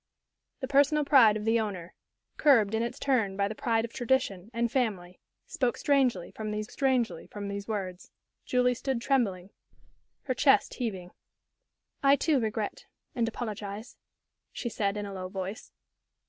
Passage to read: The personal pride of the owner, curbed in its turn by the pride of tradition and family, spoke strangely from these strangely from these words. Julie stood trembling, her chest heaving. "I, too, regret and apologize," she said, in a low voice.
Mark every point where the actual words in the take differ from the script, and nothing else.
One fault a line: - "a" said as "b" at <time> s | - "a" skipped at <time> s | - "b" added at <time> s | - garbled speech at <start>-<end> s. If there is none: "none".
none